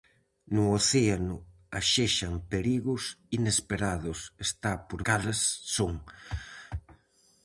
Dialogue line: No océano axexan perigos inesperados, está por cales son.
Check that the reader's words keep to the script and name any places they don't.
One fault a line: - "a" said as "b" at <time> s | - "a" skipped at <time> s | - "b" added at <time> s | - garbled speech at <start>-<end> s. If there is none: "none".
none